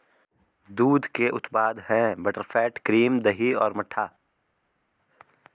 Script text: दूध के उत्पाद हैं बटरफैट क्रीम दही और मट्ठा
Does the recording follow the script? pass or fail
pass